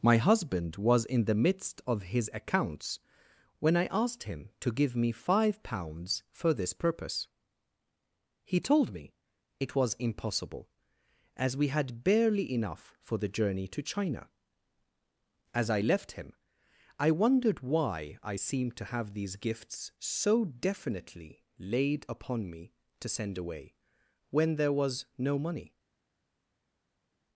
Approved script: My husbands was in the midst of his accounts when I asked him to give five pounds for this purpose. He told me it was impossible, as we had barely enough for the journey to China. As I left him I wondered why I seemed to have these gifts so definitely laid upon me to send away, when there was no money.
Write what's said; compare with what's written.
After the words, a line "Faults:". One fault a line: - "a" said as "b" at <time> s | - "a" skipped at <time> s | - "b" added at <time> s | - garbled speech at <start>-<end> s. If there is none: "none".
My husband was in the midst of his accounts when I asked him to give me five pounds for this purpose. He told me it was impossible, as we had barely enough for the journey to China. As I left him I wondered why I seemed to have these gifts so definitely laid upon me to send away, when there was no money.
Faults:
- "husbands" said as "husband" at 0.2 s
- "me" added at 5.0 s